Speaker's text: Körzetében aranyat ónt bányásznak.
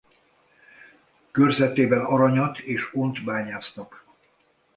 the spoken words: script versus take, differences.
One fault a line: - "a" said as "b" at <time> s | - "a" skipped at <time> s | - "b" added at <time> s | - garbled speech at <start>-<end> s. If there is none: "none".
- "és" added at 2.6 s